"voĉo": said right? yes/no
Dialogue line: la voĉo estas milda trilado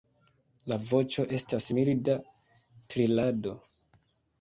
yes